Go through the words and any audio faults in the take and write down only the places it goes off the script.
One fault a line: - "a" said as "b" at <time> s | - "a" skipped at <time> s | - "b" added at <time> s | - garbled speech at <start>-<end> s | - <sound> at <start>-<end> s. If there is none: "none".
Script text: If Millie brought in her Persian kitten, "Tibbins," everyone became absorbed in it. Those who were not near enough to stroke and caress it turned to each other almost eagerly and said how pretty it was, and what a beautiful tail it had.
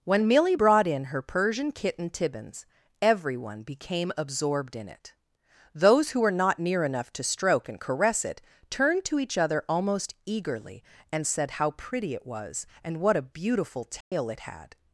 - "If" said as "When" at 0.0 s
- dropout at 14.0-14.1 s